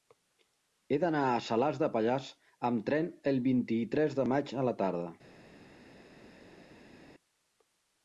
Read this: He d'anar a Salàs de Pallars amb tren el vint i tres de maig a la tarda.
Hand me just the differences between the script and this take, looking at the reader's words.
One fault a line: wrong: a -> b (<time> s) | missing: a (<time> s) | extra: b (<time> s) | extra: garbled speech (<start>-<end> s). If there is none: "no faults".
no faults